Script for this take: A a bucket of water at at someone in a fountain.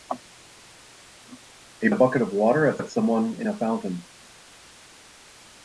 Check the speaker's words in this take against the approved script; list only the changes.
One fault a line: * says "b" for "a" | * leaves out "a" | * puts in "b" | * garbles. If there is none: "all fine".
all fine